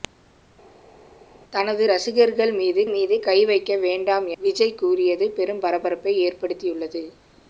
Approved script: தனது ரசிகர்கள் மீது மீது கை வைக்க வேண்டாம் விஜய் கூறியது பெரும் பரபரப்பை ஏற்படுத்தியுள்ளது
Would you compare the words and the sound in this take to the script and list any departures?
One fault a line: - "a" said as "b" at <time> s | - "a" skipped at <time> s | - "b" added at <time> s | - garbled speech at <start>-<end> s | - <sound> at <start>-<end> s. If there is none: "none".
none